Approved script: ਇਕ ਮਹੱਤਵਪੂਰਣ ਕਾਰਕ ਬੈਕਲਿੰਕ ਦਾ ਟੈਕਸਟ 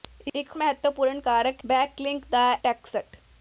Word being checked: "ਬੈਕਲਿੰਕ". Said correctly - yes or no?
yes